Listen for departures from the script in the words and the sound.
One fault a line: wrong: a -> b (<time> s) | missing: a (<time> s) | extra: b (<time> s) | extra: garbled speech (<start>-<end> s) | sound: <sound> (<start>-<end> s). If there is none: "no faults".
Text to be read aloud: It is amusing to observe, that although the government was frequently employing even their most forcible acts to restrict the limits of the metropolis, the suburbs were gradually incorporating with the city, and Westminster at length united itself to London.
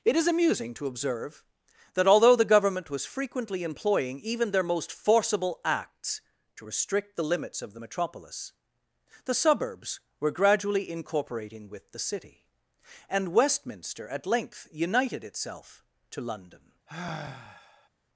sound: sigh (16.9-17.9 s)